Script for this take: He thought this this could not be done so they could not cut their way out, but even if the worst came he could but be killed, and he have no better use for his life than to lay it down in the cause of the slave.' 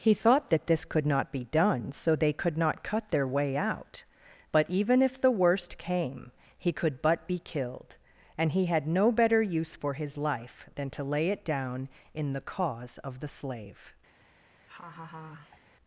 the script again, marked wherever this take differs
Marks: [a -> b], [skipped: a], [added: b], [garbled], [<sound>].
He thought [this -> that] this could not be done so they could not cut their way out, but even if the worst came he could but be killed, and he [have -> had] no better use for his life than to lay it down in the cause of the slave.' [laugh]